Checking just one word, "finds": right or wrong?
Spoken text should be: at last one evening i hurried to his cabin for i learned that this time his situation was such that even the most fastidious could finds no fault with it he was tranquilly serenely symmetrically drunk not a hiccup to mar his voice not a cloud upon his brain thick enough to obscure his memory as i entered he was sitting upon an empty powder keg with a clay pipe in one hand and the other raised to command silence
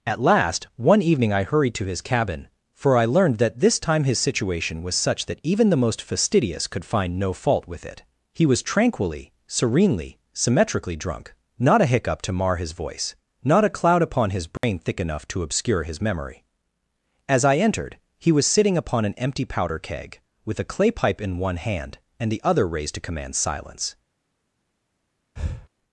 wrong